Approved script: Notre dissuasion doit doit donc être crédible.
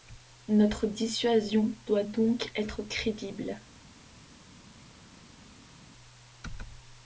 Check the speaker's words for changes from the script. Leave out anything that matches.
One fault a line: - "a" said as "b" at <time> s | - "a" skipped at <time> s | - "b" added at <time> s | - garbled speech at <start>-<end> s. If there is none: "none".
- "doit" skipped at 2.0 s